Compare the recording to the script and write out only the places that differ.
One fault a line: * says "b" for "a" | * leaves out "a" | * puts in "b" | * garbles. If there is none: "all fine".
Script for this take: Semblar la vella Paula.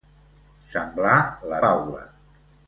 * leaves out "vella"